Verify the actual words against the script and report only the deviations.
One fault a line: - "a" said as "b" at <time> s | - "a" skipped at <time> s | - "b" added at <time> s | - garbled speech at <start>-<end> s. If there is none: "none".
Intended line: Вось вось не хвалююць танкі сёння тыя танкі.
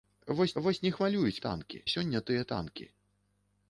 none